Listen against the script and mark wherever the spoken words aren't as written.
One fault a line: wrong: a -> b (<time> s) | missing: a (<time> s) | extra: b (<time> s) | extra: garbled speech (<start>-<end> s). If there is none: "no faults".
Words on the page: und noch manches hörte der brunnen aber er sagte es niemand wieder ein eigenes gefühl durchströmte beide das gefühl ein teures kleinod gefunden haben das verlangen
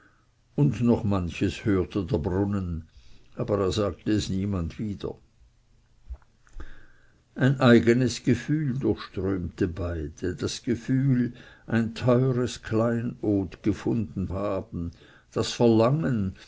no faults